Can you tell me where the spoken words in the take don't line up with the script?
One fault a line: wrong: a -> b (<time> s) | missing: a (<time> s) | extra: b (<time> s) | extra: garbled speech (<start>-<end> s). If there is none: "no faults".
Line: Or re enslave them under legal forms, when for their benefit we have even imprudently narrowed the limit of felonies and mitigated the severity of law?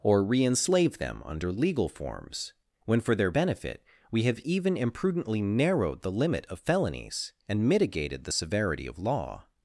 no faults